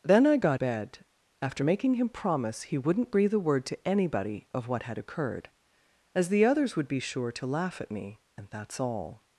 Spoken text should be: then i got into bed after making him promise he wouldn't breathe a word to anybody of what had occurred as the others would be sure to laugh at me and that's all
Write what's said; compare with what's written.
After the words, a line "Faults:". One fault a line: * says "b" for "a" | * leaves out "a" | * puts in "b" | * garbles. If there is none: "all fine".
then i got bed after making him promise he wouldn't breathe a word to anybody of what had occurred as the others would be sure to laugh at me and that's all
Faults:
* leaves out "into"